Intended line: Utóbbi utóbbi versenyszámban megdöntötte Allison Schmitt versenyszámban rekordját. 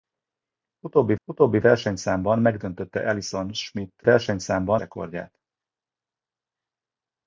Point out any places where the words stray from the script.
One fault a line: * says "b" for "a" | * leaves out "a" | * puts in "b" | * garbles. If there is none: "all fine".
all fine